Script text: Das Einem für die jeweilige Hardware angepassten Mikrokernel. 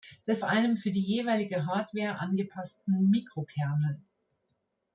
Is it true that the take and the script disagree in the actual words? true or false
false